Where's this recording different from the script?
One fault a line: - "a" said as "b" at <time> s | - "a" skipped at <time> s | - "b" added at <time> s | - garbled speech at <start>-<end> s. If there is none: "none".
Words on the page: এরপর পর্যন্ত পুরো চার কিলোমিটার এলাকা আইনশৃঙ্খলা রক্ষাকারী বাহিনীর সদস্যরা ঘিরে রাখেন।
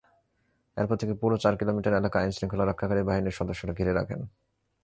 - "পর্যন্ত" said as "থেকে" at 1.0 s